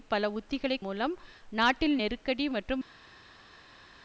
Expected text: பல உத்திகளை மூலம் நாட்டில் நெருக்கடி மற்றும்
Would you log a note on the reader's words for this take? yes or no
no